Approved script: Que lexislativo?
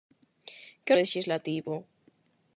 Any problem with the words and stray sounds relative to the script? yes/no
no